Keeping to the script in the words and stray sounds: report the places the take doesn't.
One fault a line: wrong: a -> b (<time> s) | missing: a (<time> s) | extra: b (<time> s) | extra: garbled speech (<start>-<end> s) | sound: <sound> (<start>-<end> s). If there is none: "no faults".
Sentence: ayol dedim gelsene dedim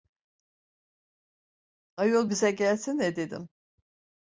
wrong: dedim -> bize (2.3 s)